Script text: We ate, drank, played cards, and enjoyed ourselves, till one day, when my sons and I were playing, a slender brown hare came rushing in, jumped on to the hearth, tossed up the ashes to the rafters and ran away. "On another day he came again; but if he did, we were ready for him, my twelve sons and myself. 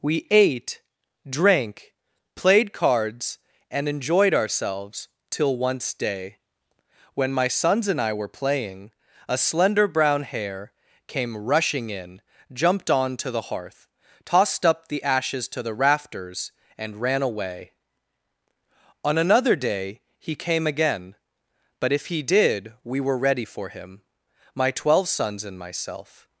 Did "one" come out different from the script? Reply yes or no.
yes